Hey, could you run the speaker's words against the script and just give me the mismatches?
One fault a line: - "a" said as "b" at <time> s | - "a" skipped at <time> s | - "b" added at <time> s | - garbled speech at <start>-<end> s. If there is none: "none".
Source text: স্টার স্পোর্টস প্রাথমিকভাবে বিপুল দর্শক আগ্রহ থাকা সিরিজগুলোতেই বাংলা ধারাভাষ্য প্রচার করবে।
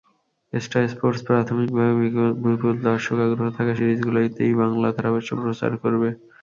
none